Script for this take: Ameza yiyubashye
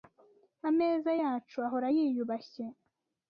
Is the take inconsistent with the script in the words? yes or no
yes